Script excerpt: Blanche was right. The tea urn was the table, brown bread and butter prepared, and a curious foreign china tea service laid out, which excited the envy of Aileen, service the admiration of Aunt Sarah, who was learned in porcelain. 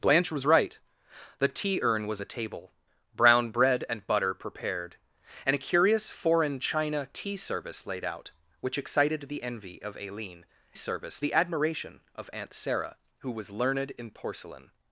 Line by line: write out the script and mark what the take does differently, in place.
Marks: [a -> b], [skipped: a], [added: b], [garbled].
Blanche was right. The tea urn was the table, brown bread and butter prepared, and a curious foreign china tea service laid out, which excited the envy of Aileen, service the admiration of Aunt Sarah, who was learned in porcelain.